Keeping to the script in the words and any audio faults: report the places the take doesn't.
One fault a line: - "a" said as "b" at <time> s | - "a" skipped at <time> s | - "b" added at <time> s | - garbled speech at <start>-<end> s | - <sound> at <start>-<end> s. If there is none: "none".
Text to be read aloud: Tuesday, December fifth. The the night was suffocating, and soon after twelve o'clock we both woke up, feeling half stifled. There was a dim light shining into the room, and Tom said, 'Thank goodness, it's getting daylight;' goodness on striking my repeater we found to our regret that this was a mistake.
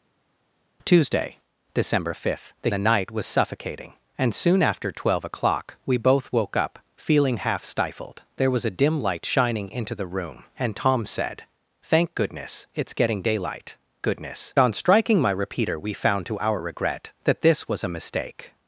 none